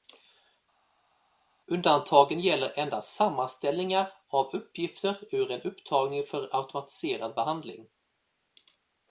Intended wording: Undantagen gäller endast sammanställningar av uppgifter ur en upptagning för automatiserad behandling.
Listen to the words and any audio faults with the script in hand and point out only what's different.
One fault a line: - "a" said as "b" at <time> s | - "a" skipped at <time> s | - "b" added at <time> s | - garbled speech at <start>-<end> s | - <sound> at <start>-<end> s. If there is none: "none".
none